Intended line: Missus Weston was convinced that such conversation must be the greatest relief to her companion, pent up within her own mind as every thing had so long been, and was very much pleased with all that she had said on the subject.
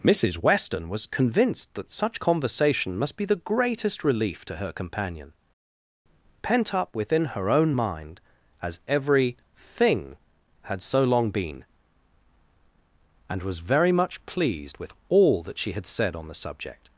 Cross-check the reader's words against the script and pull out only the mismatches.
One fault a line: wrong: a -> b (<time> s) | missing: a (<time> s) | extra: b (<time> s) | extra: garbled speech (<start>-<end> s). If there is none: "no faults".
no faults